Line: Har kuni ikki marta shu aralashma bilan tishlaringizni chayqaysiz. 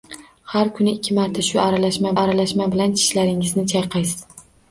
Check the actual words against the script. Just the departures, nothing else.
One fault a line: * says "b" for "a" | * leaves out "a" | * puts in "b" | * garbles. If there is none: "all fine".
* puts in "aralashma"